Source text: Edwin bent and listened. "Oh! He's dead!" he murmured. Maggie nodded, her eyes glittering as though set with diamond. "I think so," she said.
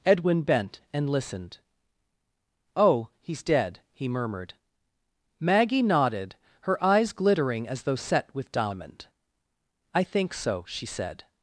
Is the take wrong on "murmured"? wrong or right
right